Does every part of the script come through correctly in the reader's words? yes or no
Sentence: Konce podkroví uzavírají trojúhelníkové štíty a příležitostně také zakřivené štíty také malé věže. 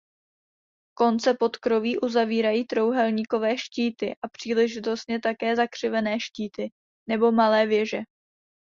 no